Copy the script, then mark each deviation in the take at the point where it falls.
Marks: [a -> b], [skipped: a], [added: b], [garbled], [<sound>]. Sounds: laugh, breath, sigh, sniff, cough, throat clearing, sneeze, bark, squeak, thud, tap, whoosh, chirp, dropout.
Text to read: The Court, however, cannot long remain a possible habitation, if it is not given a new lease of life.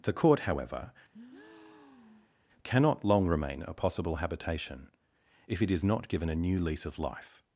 The Court, however, [breath] cannot long remain a possible habitation, if it is not given a new lease of life.